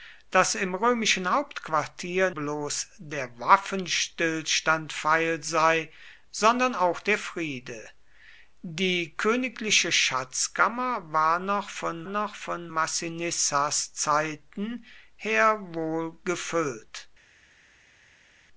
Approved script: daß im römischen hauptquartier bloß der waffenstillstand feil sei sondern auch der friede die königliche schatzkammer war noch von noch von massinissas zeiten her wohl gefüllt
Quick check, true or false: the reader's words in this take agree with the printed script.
true